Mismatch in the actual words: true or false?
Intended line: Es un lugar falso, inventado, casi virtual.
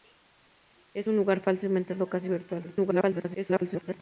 true